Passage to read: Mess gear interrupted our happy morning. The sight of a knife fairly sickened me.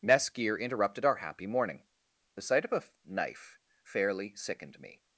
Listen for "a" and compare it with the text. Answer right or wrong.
right